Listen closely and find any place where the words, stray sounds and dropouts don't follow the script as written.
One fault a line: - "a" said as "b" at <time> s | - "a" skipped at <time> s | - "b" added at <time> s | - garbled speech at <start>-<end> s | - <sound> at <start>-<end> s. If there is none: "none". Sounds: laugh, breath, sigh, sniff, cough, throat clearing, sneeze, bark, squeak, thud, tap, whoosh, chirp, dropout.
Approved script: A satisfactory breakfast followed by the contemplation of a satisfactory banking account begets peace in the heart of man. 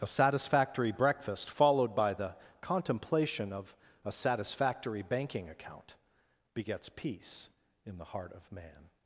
none